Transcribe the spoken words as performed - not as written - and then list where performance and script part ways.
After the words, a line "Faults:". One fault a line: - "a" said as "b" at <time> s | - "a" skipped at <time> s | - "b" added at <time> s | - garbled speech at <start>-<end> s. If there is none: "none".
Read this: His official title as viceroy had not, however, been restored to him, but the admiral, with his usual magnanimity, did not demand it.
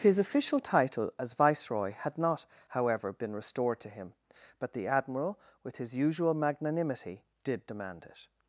His official title as viceroy had not, however, been restored to him, but the admiral, with his usual magnanimity, did demand it.
Faults:
- "not" skipped at 7.7 s